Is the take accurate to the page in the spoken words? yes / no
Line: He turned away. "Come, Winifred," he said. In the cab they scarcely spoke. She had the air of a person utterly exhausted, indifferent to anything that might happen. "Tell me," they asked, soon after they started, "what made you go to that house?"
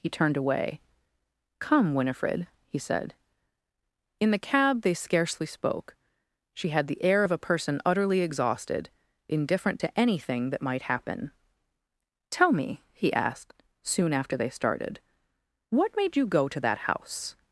no